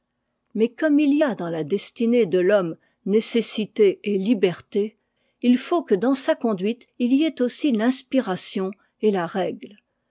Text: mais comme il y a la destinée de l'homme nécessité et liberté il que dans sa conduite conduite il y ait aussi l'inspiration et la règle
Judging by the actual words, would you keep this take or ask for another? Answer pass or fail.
fail